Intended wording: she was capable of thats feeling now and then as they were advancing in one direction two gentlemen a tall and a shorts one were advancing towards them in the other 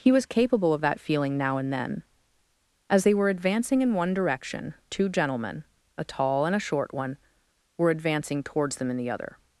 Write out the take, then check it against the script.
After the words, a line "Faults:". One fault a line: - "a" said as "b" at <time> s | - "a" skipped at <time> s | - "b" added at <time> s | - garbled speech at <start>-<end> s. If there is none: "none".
he was capable of that feeling now and then as they were advancing in one direction two gentlemen a tall and a short one were advancing towards them in the other
Faults:
- "she" said as "he" at 0.0 s
- "thats" said as "that" at 0.8 s
- "shorts" said as "short" at 6.7 s